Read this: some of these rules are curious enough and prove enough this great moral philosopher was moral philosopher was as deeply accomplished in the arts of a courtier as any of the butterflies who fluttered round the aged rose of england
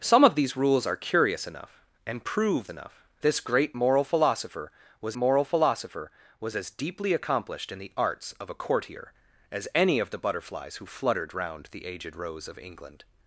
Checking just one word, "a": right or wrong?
right